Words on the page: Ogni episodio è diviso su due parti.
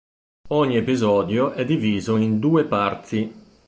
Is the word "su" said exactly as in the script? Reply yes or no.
no